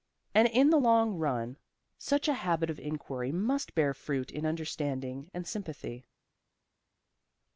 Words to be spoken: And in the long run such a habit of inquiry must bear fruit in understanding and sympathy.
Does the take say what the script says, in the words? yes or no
yes